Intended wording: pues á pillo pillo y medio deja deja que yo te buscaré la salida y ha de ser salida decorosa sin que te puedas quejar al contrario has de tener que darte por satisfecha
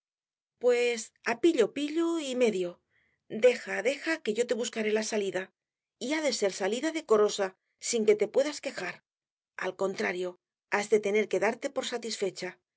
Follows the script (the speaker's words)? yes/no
yes